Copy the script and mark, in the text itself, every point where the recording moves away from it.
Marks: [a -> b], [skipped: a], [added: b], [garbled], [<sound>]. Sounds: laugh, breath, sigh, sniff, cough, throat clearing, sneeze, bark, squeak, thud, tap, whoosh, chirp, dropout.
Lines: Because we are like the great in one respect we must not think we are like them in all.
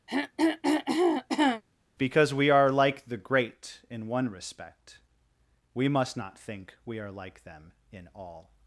[throat clearing] Because we are like the great in one respect we must not think we are like them in all.